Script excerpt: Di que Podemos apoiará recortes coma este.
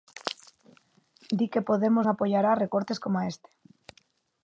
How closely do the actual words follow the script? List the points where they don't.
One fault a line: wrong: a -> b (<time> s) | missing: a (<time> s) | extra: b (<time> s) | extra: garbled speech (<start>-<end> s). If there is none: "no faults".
no faults